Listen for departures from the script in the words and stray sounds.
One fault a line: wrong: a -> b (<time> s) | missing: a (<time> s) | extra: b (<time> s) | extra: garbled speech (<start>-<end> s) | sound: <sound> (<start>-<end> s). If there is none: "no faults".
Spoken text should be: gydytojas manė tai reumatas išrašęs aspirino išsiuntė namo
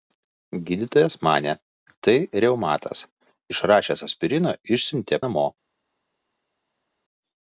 no faults